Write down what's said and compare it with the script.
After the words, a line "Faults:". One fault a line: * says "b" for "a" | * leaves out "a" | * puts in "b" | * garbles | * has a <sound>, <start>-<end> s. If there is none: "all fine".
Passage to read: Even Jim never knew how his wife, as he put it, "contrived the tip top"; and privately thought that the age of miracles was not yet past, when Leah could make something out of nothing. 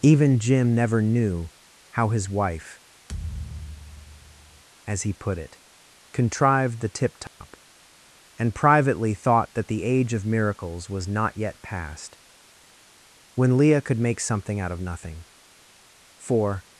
Even Jim never knew how his wife, as he put it, "contrived the tip top"; and privately thought that the age of miracles was not yet past, when Leah could make something out of nothing. For
Faults:
* has a thud, 3.1-4.6 s
* has a dropout, 7.3-7.4 s
* puts in "For"